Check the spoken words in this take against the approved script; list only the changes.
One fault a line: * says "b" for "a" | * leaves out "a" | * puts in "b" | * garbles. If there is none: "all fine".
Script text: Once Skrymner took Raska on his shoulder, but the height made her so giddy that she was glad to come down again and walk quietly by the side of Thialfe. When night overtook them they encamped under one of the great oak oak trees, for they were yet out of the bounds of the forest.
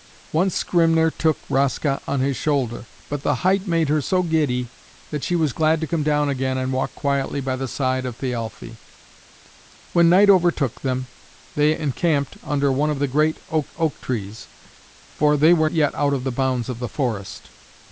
all fine